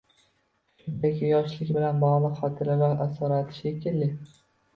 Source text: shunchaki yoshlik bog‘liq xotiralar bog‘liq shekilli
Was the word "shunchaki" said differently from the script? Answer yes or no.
no